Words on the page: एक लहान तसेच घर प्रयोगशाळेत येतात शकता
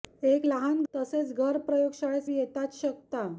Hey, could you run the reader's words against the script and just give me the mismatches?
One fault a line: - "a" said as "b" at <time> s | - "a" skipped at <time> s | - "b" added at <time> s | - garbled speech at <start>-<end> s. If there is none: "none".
none